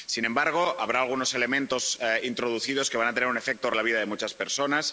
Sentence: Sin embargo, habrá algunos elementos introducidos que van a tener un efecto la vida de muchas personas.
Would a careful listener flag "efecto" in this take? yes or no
no